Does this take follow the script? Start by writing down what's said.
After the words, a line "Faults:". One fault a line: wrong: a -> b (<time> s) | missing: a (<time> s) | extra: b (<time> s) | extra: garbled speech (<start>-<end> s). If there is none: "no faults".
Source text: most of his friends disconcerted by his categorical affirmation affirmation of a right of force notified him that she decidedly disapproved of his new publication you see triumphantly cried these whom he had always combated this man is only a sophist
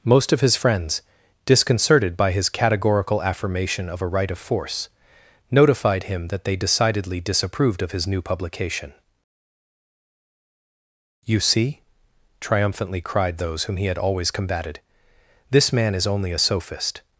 most of his friends disconcerted by his categorical affirmation of a right of force notified him that they decidedly disapproved of his new publication you see triumphantly cried those whom he had always combated this man is only a sophist
Faults:
missing: affirmation (3.9 s)
wrong: she -> they (6.4 s)
wrong: these -> those (13.4 s)